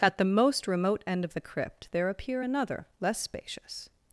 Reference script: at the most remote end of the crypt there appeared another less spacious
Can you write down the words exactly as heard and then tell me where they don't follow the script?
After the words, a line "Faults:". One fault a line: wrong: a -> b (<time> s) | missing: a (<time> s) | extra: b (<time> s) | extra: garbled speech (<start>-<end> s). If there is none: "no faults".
at the most remote end of the crypt there appear another less spacious
Faults:
wrong: appeared -> appear (2.1 s)